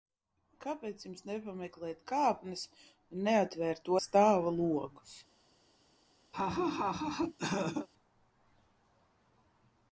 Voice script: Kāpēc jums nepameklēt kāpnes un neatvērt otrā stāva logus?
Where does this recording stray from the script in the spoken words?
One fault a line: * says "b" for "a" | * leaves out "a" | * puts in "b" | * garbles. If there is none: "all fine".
* leaves out "otrā"